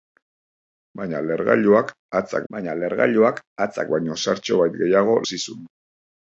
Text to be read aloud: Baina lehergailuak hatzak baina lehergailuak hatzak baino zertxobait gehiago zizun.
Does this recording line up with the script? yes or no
yes